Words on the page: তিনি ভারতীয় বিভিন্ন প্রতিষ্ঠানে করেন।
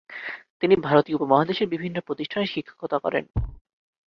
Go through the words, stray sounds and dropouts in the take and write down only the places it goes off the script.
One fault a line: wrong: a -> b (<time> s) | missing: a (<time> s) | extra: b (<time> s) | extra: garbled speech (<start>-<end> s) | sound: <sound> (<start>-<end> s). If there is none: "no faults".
extra: উপমহাদেশের (1.2 s)
extra: শিক্ষকতা (2.5 s)
sound: thud (3.3-3.6 s)